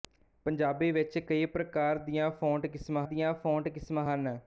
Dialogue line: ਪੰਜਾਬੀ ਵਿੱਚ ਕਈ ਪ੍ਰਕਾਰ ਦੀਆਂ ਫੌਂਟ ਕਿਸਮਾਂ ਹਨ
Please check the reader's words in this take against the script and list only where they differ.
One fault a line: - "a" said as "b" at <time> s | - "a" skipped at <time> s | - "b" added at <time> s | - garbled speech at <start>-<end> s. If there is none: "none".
- "ਦੀਆਂ ਫੌਂਟ ਕਿਸਮਾਂ" added at 3.0 s